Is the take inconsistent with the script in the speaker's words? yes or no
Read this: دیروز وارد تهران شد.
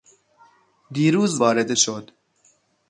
yes